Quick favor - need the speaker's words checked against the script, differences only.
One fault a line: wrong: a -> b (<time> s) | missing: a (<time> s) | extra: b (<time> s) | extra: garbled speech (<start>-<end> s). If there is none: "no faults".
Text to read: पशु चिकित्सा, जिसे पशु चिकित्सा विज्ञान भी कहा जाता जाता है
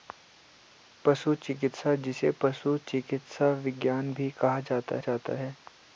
no faults